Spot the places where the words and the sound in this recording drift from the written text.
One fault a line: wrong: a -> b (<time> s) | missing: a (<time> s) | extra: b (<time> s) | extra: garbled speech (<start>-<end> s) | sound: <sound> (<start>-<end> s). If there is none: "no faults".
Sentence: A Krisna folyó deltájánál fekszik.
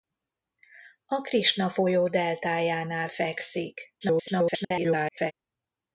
extra: garbled speech (4.0-5.3 s)